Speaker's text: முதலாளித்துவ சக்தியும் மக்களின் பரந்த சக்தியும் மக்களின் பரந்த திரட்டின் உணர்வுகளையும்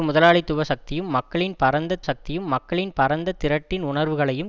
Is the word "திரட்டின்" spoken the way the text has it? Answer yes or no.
yes